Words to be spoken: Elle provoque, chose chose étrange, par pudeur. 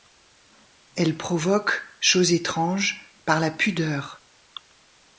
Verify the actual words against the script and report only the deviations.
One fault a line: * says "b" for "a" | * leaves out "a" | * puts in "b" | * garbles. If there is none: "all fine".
* leaves out "chose"
* puts in "la"